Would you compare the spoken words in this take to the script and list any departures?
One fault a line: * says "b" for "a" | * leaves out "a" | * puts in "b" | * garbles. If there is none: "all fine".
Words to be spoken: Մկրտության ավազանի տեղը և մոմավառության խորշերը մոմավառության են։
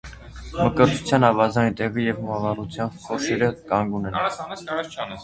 * says "կանգուն" for "մոմավառության"